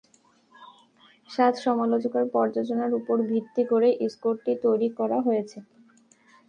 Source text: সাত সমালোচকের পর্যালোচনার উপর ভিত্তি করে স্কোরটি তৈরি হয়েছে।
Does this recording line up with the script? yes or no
no